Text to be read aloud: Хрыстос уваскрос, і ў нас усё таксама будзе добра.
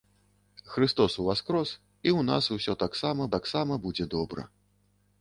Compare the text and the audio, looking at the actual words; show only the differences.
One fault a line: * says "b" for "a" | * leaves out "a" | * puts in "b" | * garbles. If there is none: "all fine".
* puts in "таксама"